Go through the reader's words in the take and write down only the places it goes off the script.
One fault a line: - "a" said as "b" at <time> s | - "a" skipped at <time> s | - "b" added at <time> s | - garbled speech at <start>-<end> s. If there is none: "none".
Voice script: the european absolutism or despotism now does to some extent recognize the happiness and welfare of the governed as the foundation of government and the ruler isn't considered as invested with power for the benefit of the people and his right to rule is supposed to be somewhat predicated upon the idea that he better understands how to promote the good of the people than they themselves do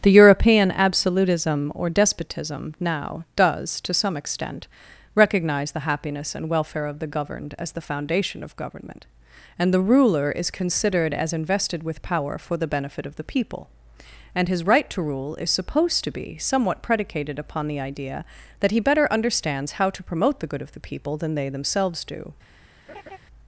- "isn't" said as "is" at 10.3 s